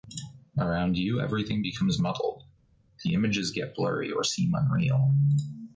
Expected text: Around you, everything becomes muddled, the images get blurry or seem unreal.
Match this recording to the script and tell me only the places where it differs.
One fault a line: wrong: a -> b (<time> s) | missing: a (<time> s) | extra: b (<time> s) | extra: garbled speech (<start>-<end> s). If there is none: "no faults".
no faults